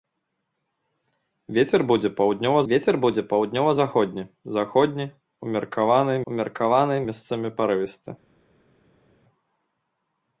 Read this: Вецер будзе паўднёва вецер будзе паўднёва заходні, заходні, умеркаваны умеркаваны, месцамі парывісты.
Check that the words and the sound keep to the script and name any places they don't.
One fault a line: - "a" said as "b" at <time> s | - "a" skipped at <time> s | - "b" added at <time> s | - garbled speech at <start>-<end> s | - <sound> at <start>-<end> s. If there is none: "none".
none